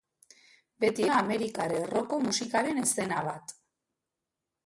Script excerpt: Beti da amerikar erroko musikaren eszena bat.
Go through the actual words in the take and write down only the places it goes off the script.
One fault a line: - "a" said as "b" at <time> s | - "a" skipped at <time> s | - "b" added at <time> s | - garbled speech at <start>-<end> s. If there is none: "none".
none